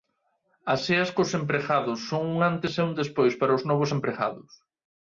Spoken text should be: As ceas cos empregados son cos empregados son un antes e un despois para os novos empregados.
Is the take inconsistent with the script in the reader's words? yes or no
yes